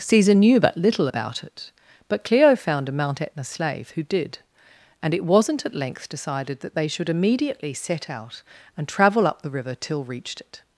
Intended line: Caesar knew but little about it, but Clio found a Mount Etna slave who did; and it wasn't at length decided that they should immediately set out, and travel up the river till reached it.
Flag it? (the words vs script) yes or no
no